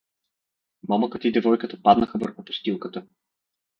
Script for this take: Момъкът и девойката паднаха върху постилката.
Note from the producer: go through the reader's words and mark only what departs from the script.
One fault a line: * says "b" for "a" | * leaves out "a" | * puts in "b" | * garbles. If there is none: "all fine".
all fine